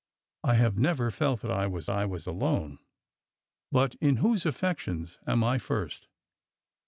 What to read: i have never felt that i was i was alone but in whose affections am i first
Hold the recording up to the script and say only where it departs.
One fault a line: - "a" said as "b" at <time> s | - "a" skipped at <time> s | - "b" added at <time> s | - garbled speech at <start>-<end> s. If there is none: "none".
none